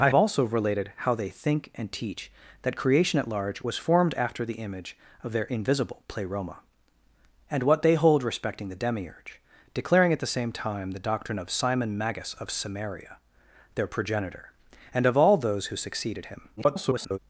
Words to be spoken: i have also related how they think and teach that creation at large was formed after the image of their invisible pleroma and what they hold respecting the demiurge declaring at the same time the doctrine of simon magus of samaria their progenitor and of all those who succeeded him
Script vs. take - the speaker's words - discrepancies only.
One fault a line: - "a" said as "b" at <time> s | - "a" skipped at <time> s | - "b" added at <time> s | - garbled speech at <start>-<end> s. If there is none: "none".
- "have" skipped at 0.1 s
- garbled speech at 16.6-17.2 s